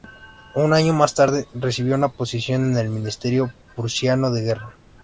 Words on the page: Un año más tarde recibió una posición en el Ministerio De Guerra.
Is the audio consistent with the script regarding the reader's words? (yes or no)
no